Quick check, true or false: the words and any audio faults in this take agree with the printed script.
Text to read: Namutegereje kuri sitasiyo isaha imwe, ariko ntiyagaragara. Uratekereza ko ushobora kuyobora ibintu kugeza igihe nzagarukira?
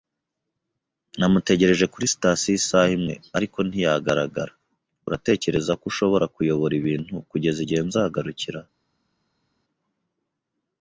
true